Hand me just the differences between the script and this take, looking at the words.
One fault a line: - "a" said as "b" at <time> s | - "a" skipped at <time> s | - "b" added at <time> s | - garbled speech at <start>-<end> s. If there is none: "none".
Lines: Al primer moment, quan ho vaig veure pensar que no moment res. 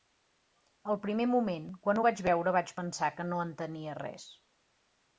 - "vaig" added at 2.6 s
- "moment" said as "entenia" at 3.5 s